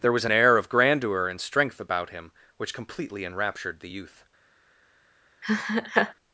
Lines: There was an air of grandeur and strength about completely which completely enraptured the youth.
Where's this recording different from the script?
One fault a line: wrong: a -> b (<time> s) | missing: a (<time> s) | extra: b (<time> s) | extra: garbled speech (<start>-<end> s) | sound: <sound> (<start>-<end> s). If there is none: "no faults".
wrong: completely -> him (2.1 s)
sound: laugh (5.4-6.1 s)